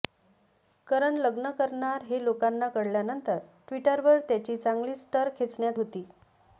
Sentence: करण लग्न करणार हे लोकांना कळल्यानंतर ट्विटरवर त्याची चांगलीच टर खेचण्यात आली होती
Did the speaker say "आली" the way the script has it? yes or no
no